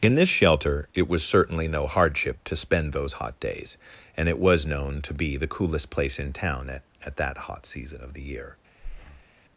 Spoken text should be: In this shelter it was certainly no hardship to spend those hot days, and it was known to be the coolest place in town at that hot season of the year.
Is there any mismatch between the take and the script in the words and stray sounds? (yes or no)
yes